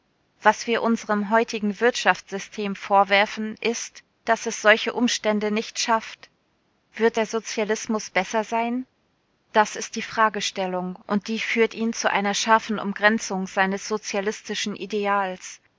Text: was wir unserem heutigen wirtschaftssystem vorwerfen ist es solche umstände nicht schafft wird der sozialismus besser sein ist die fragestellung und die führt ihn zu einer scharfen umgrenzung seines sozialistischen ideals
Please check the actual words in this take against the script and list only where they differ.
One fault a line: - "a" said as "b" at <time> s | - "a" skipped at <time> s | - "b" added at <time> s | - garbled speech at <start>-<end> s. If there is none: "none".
- "daß" added at 4.2 s
- "das" added at 9.5 s